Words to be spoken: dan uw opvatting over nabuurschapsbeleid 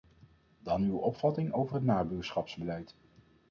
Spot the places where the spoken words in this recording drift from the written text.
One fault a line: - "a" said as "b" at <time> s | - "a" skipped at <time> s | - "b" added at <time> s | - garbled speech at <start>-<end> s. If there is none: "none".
- "het" added at 1.7 s